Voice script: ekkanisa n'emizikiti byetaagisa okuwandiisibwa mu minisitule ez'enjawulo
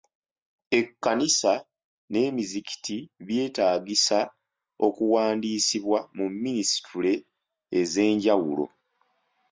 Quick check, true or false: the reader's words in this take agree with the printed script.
true